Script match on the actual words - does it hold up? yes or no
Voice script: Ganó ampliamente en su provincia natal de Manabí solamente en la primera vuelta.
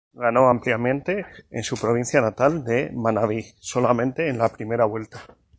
yes